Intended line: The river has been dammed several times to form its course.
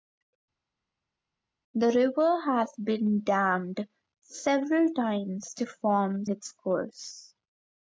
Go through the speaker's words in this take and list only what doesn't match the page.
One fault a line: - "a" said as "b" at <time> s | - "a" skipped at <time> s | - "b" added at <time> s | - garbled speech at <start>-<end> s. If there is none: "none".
none